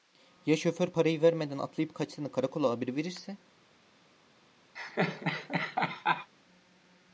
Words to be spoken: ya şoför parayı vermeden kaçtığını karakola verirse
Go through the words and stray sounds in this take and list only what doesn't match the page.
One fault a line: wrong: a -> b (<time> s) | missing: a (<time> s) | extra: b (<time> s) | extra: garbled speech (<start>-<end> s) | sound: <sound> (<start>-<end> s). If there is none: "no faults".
extra: atlayıp (1.6 s)
extra: haber (2.7 s)
sound: laugh (4.8-6.3 s)